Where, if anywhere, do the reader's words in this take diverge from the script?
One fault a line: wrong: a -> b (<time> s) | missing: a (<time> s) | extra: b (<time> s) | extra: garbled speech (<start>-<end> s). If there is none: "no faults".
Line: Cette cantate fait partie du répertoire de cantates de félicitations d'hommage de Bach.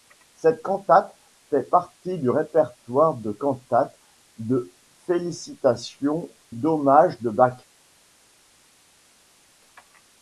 no faults